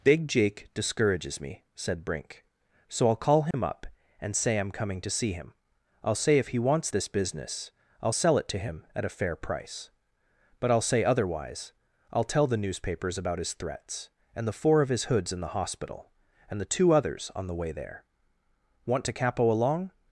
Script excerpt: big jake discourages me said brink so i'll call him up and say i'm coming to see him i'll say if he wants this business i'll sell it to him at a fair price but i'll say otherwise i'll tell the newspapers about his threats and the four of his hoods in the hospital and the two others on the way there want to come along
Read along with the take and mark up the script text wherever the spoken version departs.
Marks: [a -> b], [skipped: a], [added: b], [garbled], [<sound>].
big jake discourages me said brink so i'll call him [dropout] up and say i'm coming to see him i'll say if he wants this business i'll sell it to him at a fair price but i'll say otherwise i'll tell the newspapers about his threats and the four of his hoods in the hospital and the two others on the way there want to [come -> capo] along